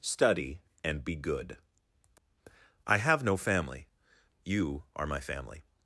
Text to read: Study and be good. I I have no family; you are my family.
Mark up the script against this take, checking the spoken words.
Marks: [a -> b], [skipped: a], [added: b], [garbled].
Study and be good. I [skipped: I] have no family; you are my family.